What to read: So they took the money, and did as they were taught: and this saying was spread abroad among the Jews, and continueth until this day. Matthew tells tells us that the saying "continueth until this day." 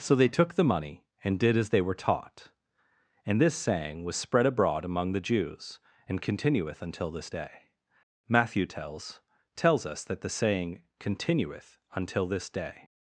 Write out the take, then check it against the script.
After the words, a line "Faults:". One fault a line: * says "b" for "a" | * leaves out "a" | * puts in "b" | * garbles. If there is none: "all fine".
So they took the money, and did as they were taught: and this saying was spread abroad among the Jews, and continueth until this day. Matthew tells tells us that the saying "continueth until this day."
Faults:
all fine